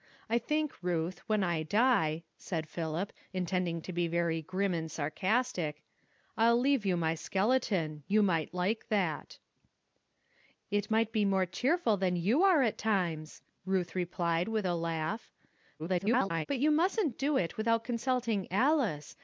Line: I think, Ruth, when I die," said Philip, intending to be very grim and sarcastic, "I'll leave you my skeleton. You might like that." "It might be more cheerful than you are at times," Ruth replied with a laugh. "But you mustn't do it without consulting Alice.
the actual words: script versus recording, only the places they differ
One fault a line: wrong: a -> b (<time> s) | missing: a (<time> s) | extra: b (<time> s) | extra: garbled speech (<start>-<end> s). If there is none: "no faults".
extra: garbled speech (15.8-16.5 s)